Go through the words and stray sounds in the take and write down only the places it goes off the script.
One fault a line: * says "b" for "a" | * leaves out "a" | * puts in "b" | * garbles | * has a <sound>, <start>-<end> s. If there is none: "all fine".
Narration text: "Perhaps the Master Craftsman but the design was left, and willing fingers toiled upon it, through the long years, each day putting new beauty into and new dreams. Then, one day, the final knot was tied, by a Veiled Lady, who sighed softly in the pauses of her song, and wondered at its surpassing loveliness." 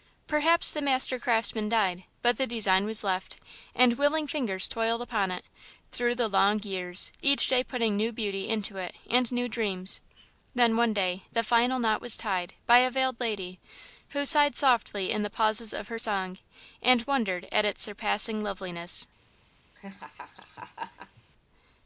* puts in "died"
* puts in "it"
* has a laugh, 19.7-21.2 s